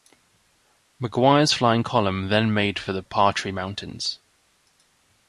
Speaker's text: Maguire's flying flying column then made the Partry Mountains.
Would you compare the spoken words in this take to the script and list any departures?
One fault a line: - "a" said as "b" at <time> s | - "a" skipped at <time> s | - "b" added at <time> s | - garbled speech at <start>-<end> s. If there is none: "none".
- "flying" skipped at 1.8 s
- "for" added at 2.8 s